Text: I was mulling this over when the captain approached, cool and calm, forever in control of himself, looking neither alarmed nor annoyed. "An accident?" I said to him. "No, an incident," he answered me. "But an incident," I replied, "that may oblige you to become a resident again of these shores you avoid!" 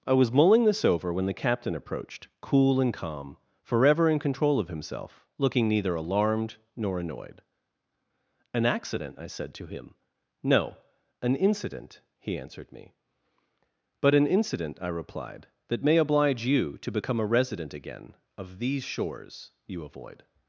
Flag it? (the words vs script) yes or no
no